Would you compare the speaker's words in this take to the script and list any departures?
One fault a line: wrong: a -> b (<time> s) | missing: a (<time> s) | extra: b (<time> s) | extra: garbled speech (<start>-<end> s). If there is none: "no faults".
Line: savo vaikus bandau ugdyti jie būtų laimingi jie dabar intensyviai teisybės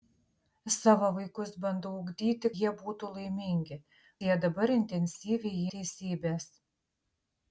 no faults